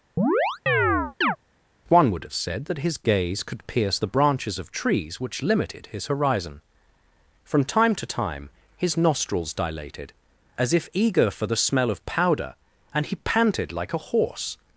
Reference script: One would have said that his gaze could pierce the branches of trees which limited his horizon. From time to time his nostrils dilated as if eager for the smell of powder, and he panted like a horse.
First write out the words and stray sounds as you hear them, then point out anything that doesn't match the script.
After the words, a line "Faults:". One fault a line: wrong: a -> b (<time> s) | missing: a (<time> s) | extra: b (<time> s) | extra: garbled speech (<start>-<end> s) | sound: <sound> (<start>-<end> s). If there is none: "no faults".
One would have said that his gaze could pierce the branches of trees which limited his horizon. From time to time his nostrils dilated as if eager for the smell of powder, and he panted like a horse.
Faults:
sound: chirp (0.2-1.4 s)